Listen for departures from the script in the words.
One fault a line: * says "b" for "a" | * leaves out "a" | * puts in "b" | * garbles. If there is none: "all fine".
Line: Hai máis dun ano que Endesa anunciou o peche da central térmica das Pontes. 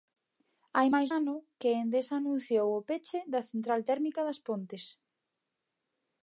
* leaves out "dun"